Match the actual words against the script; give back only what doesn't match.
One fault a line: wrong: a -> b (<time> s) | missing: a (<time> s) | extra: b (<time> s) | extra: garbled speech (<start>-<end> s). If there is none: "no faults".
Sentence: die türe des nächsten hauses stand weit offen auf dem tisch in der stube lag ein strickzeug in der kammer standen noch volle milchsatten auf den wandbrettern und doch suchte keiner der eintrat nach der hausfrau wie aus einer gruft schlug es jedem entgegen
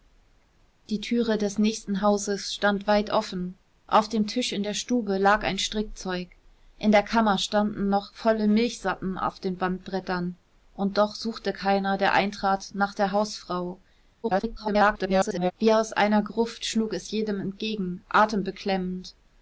extra: garbled speech (14.2-15.5 s)